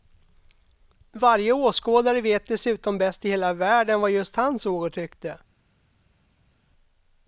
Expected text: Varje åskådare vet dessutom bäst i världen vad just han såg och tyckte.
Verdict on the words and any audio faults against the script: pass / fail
fail